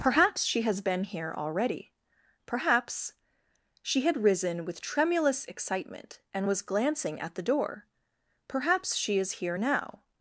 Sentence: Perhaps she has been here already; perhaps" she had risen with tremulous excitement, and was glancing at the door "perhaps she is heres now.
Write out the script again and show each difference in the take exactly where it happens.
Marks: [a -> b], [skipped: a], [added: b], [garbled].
Perhaps she has been here already; perhaps" she had risen with tremulous excitement, and was glancing at the door "perhaps she is [heres -> here] now.